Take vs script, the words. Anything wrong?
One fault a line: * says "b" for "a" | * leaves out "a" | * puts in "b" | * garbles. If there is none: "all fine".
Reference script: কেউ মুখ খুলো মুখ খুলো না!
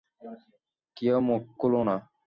* leaves out "মুখ খুলো"